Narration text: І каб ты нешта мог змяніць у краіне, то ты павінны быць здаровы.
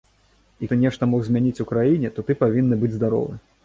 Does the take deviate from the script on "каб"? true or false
true